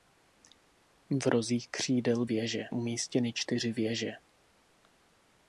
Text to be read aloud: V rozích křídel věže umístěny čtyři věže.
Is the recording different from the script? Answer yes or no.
no